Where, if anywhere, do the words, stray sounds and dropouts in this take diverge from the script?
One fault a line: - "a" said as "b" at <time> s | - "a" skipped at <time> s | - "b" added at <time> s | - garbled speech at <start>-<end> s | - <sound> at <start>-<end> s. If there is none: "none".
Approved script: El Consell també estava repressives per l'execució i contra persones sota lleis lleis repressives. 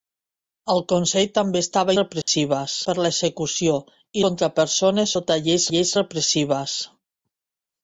- dropout at 2.2-2.3 s